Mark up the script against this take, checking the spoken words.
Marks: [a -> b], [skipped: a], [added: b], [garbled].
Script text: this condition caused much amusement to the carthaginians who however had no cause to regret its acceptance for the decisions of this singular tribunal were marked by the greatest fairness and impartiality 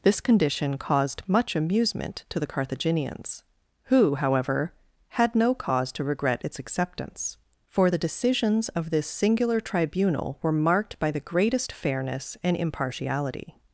this condition caused much amusement to the carthaginians who however had no cause to regret its acceptance for the decisions of this singular tribunal were marked by the greatest fairness and impartiality